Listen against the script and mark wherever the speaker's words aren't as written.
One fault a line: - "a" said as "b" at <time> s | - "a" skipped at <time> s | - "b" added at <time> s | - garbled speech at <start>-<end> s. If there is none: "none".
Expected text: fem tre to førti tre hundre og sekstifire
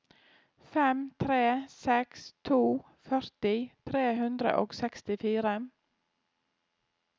- "seks" added at 1.7 s